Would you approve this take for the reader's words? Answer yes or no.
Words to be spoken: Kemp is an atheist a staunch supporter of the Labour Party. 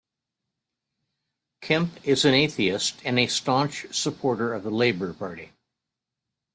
no